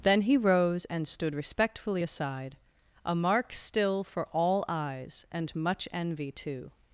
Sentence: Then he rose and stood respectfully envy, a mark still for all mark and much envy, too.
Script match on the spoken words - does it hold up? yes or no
no